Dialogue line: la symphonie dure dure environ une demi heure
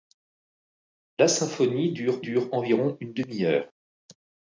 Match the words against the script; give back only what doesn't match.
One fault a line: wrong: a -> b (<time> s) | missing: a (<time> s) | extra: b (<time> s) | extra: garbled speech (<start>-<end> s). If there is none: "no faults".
no faults